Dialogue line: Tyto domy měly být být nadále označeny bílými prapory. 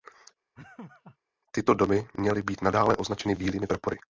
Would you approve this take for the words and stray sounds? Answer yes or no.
no